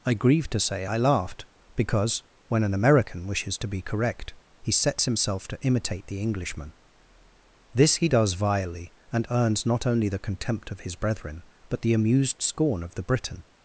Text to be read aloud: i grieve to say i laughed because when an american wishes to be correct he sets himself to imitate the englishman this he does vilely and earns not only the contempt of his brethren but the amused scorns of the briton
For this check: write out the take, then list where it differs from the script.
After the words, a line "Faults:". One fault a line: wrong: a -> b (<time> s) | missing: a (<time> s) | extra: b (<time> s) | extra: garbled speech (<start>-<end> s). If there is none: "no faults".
i grieve to say i laughed because when an american wishes to be correct he sets himself to imitate the englishman this he does vilely and earns not only the contempt of his brethren but the amused scorn of the briton
Faults:
wrong: scorns -> scorn (12.4 s)